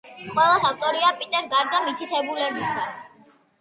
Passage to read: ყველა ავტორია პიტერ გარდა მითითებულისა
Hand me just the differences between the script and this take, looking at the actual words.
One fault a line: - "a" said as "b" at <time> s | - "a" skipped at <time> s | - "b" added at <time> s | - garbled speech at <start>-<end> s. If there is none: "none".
none